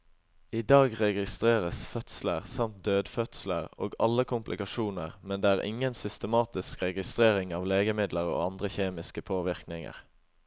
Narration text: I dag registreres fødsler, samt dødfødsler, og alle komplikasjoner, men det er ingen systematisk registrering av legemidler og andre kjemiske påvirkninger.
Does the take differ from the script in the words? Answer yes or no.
no